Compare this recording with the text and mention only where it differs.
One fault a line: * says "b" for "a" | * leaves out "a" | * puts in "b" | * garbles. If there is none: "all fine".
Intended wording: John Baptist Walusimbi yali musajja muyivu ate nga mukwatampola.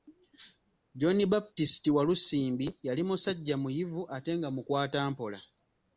all fine